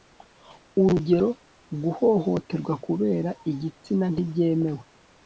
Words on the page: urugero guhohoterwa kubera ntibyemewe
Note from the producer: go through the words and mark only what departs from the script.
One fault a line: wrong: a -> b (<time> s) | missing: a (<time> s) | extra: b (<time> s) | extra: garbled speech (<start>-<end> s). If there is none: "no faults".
extra: igitsina (3.5 s)